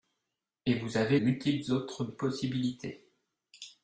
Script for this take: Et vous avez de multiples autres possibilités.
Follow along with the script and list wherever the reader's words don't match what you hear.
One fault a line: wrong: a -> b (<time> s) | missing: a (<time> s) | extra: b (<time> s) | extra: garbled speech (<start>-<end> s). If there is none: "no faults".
missing: de (1.2 s)